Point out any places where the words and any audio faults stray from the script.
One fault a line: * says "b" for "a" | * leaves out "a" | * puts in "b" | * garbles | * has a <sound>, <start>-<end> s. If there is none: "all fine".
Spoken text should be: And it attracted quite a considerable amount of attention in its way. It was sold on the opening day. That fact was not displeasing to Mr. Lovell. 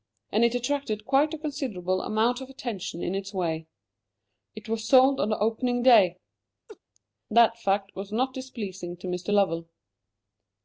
* has a laugh, 6.7-6.8 s